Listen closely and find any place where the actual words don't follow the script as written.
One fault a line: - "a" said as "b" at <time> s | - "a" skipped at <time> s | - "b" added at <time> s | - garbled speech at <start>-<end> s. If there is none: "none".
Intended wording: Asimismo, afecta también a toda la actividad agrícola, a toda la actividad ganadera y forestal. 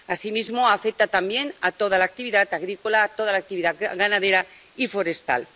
none